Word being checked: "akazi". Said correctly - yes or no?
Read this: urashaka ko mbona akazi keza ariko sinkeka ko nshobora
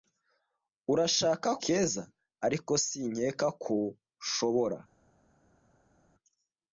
no